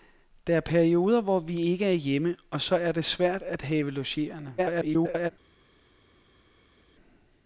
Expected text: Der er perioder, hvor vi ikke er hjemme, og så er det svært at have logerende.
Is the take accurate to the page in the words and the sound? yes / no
no